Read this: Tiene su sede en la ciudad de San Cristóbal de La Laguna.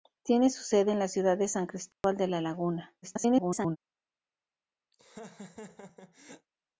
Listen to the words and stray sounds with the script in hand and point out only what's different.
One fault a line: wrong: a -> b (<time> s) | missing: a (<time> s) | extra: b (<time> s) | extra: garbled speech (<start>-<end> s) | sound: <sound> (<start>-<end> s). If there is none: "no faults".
sound: dropout (1.9-2.0 s)
extra: garbled speech (3.0-3.8 s)
sound: laugh (4.9-6.5 s)